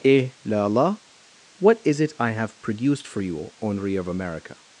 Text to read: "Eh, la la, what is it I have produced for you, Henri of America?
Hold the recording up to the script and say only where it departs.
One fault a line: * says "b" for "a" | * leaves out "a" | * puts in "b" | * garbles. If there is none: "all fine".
all fine